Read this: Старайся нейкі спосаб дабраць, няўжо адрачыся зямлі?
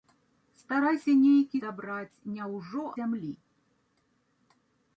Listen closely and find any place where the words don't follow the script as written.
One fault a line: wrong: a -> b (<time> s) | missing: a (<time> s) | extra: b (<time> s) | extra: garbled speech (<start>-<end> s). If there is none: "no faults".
missing: спосаб (1.6 s)
missing: адрачыся (2.8 s)